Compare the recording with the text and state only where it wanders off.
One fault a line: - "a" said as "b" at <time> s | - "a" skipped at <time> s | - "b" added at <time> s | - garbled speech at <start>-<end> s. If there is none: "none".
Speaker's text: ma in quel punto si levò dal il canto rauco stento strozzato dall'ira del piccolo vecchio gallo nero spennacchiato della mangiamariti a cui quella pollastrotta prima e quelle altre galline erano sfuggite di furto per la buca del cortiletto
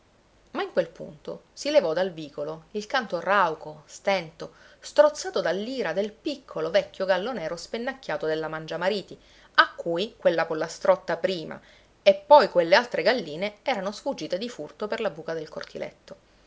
- "vicolo" added at 2.1 s
- "poi" added at 12.2 s